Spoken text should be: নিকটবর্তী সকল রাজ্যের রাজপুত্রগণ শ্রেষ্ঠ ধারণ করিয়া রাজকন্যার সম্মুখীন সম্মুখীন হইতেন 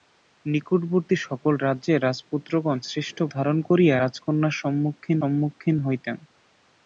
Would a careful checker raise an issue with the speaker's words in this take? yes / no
no